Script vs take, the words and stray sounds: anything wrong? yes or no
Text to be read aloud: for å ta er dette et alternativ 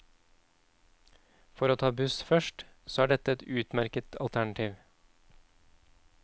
yes